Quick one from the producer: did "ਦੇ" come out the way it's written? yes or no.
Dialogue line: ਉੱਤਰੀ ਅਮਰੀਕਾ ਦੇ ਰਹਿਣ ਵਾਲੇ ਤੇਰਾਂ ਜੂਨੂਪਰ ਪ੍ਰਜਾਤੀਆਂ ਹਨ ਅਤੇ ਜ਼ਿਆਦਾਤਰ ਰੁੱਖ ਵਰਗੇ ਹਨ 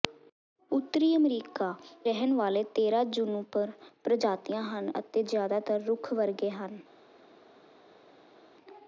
no